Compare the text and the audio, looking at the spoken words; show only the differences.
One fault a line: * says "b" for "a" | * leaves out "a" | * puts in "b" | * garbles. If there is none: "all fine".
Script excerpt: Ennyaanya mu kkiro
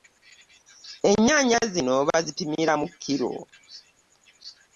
* puts in "zino bazipimira"